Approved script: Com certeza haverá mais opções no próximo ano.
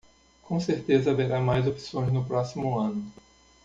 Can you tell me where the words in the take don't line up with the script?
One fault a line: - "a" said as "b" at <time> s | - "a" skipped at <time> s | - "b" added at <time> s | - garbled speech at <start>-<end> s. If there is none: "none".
none